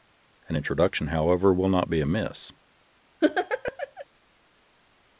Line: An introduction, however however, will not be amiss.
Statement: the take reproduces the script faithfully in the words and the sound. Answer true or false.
false